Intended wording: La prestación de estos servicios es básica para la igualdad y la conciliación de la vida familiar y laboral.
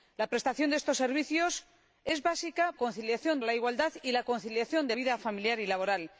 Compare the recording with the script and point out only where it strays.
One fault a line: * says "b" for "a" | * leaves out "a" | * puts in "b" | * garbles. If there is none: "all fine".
* says "conciliación" for "para"
* leaves out "la"